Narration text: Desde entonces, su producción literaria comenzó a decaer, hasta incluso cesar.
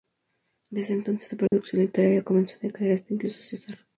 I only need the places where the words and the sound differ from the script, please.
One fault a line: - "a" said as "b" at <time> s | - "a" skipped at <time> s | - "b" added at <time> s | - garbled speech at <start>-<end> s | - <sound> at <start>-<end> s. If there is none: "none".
- dropout at 1.5-1.5 s